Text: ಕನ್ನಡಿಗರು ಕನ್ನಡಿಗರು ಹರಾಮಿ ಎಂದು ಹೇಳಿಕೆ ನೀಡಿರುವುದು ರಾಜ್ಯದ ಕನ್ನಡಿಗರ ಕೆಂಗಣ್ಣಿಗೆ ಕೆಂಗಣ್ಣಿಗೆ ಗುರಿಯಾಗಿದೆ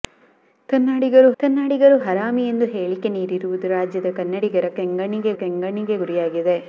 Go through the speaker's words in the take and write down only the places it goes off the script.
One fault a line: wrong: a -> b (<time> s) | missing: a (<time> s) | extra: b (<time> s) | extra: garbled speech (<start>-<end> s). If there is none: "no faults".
no faults